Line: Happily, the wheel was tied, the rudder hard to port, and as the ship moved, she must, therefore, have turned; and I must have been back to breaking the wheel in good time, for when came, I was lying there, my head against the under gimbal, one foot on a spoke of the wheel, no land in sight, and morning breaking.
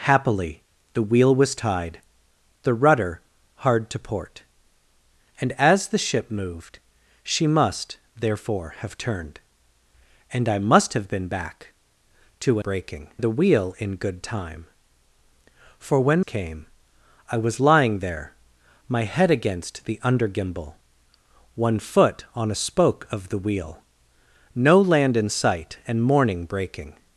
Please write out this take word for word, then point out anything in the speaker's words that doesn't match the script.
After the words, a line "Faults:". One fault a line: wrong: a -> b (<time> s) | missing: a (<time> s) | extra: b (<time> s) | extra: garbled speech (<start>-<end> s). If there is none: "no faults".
Happily, the wheel was tied, the rudder hard to port, and as the ship moved, she must, therefore, have turned; and I must have been back to breaking the wheel in good time, for when came, I was lying there, my head against the under gimbal, one foot on a spoke of the wheel, no land in sight, and morning breaking.
Faults:
no faults